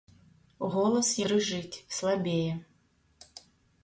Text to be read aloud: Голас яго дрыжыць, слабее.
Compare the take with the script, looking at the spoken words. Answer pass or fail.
fail